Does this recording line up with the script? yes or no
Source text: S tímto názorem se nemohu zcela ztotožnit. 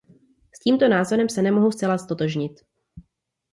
yes